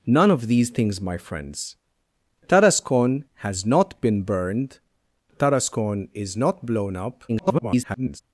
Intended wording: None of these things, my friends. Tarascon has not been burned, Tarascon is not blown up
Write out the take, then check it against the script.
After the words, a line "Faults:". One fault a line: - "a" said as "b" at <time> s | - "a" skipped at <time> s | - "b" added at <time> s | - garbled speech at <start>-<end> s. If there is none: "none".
None of these things, my friends. Tarascon has not been burned, Tarascon is not blown up [garbled]
Faults:
- garbled speech at 7.3-8.2 s